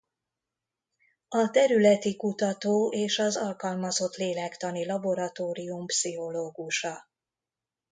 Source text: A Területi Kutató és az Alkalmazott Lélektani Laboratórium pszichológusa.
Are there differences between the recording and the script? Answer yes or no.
no